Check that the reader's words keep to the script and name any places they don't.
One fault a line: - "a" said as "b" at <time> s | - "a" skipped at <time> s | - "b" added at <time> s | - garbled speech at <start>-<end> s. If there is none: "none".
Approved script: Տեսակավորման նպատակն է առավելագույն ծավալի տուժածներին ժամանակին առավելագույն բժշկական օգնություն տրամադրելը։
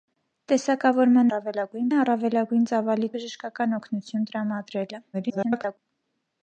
- "նպատակն" said as "առավելագույն" at 1.3 s
- "տուժածներին ժամանակին առավելագույն" skipped at 3.1 s
- garbled speech at 5.1-5.8 s